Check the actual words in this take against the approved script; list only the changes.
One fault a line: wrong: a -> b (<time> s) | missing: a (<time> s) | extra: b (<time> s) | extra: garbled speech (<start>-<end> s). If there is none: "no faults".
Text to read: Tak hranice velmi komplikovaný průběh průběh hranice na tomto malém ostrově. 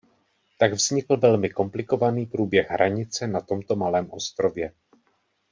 wrong: hranice -> vznikl (0.7 s)
missing: průběh (2.7 s)